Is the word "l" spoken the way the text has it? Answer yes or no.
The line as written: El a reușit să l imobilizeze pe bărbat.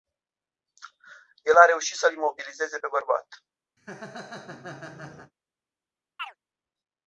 yes